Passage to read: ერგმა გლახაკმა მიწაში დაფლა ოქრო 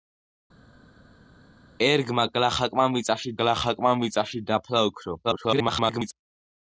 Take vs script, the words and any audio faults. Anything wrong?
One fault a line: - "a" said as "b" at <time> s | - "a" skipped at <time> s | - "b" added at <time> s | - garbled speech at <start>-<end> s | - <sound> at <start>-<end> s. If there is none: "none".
- "გლახაკმა მიწაში" added at 3.4 s
- garbled speech at 5.2-6.1 s